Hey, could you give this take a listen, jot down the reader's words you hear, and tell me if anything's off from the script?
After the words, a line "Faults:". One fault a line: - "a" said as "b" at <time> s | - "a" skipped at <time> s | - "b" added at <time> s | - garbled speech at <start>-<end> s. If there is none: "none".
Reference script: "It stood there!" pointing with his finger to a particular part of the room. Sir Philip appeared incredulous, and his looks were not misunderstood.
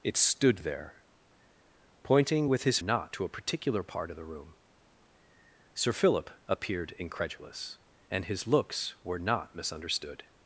"It stood there!" pointing with his not to a particular part of the room. Sir Philip appeared incredulous, and his looks were not misunderstood.
Faults:
- "finger" said as "not" at 2.8 s